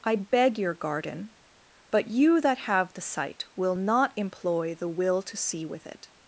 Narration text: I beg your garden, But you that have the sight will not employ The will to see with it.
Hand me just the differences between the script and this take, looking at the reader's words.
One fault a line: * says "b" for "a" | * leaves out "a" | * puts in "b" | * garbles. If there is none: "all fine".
all fine